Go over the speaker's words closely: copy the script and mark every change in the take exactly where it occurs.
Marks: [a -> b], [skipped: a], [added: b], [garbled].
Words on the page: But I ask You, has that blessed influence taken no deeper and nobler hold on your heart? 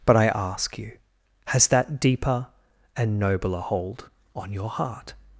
But I ask You, has that [skipped: blessed influence taken no] deeper and nobler hold on your heart?